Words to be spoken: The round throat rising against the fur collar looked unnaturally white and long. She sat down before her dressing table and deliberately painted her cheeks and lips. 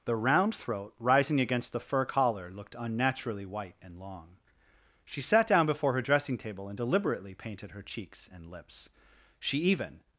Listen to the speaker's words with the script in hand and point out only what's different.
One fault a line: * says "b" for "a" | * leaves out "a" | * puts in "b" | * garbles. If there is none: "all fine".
* puts in "She even"